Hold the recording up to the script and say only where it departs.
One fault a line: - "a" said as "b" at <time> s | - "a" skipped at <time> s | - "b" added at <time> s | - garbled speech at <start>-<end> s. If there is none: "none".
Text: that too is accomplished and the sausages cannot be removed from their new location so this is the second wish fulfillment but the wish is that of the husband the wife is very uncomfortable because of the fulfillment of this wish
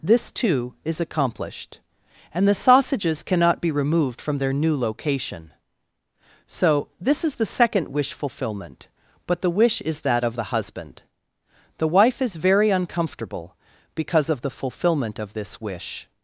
- "that" said as "this" at 0.0 s